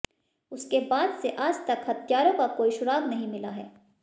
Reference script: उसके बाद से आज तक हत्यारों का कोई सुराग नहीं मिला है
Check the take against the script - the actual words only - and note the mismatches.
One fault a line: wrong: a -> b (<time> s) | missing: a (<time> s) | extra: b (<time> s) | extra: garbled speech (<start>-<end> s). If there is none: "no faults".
no faults